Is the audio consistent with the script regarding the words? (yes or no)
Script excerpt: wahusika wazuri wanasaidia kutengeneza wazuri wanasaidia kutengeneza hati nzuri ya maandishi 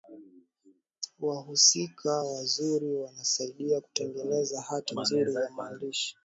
no